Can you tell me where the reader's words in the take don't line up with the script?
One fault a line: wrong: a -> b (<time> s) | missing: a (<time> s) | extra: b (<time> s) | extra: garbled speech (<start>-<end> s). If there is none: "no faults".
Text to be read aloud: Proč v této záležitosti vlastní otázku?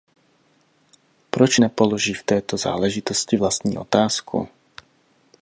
extra: nepoloží (1.6 s)